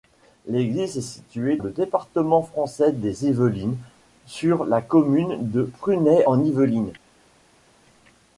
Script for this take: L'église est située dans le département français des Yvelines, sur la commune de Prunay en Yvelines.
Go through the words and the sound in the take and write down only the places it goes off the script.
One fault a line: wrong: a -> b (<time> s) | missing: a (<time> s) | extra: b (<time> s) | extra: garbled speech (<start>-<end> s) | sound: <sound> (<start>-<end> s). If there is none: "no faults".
missing: dans (1.6 s)